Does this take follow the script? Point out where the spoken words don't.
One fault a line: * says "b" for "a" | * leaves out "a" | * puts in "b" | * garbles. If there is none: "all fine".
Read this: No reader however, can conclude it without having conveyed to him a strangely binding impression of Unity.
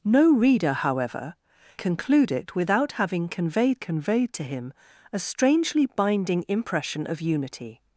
* leaves out "can"
* puts in "conveyed"